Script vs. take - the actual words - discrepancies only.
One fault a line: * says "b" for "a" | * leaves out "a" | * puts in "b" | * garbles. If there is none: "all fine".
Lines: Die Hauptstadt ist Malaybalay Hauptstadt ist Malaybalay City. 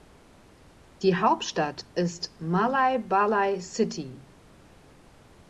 * leaves out "Hauptstadt ist Malaybalay"